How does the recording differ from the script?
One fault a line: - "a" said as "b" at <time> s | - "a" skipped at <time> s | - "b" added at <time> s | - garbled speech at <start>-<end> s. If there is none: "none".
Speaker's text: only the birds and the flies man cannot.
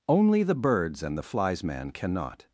none